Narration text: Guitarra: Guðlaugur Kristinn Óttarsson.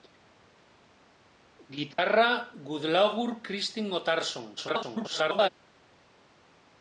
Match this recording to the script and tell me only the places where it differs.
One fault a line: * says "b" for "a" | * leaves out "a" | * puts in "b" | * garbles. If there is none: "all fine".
* garbles